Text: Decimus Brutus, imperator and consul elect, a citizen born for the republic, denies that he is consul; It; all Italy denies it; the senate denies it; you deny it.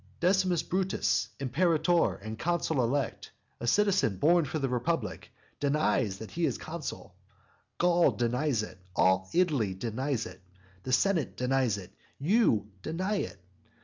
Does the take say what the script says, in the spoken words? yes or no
no